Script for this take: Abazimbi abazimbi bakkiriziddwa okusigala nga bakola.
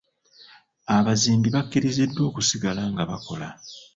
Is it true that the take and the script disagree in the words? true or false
true